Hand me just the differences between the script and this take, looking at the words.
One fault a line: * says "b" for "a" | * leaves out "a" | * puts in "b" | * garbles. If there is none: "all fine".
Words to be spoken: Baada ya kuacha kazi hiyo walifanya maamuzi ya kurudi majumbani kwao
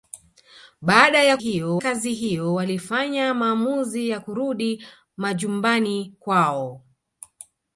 * says "hiyo" for "kuacha"